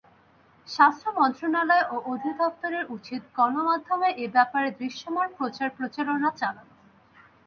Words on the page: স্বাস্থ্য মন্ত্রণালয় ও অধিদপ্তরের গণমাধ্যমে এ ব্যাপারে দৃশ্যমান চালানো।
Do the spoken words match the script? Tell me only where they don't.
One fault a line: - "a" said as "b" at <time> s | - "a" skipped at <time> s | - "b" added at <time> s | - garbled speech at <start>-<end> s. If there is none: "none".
- "উচিত" added at 2.9 s
- "প্রচার প্রচারণা" added at 5.4 s